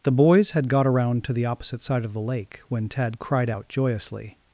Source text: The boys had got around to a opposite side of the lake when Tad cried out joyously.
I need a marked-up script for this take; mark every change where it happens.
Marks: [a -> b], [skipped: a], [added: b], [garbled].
The boys had got around to [a -> the] opposite side of the lake when Tad cried out joyously.